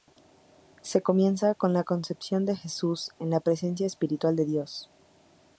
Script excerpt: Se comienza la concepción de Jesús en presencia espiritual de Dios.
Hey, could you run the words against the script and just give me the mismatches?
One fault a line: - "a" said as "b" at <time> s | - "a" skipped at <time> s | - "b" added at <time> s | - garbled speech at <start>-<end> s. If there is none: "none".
- "con" added at 1.5 s
- "la" added at 3.3 s